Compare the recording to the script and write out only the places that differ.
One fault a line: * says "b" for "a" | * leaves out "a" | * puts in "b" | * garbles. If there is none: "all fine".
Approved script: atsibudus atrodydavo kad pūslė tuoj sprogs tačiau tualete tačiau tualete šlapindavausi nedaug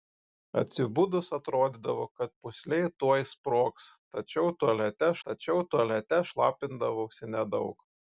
all fine